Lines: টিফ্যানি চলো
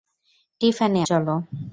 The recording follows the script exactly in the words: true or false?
true